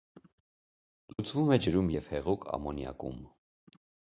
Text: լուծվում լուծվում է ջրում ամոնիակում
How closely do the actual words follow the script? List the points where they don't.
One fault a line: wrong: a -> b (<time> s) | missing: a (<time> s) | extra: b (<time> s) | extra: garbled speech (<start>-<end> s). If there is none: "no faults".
missing: լուծվում (1.5 s)
extra: և հեղուկ (2.0 s)